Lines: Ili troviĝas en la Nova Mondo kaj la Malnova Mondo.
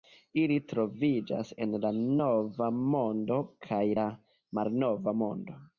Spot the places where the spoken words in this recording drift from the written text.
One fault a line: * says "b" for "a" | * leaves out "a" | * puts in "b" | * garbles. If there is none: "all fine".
all fine